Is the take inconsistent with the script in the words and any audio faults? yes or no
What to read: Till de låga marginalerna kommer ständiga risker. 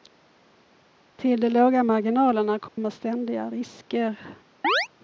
yes